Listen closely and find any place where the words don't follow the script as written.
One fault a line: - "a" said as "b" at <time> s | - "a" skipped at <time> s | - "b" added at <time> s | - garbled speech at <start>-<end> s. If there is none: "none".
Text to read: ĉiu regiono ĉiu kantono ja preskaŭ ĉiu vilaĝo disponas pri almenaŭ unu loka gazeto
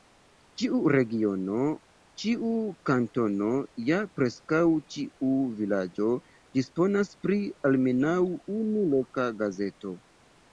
none